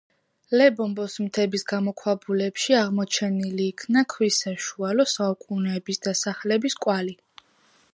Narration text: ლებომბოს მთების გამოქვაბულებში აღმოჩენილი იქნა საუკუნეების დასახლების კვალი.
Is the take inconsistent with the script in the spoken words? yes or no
yes